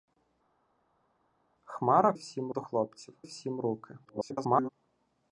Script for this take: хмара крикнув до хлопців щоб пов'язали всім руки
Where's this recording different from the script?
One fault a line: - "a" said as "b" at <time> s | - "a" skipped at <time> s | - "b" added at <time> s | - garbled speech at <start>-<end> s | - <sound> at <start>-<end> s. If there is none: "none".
- "крикнув" said as "всім" at 2.1 s
- "щоб пов'язали" skipped at 3.1 s
- garbled speech at 4.0-4.7 s